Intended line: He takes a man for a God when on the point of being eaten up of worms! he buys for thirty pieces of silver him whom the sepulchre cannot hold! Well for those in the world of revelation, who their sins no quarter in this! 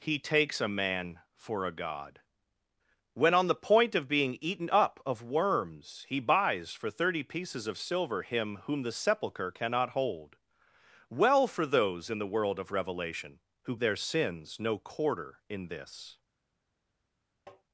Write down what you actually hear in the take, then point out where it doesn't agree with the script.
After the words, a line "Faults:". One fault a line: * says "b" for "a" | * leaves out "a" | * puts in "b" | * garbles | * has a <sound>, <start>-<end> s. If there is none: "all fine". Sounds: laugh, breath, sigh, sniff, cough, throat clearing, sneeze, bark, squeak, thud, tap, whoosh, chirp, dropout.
He takes a man for a God when on the point of being eaten up of worms! he buys for thirty pieces of silver him whom the sepulchre cannot hold! Well for those in the world of revelation, who their sins no quarter in this!
Faults:
* has a tap, 17.5-17.6 s